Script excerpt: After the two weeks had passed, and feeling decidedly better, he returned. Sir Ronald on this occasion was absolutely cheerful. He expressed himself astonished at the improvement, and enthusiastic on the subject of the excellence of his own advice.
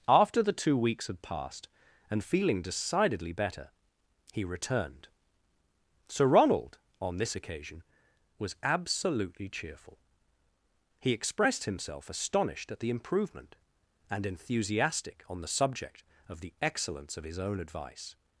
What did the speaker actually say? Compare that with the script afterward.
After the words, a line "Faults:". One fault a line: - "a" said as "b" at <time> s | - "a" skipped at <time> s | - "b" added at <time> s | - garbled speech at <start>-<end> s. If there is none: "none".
After the two weeks had passed, and feeling decidedly better, he returned. Sir Ronald on this occasion was absolutely cheerful. He expressed himself astonished at the improvement, and enthusiastic on the subject of the excellence of his own advice.
Faults:
none